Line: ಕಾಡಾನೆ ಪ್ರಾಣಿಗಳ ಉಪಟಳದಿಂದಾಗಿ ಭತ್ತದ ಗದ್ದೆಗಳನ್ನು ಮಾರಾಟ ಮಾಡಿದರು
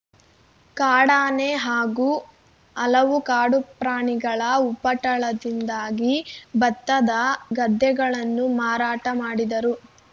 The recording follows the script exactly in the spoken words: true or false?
false